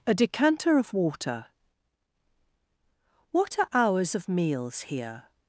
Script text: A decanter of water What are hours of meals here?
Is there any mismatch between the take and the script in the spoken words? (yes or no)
no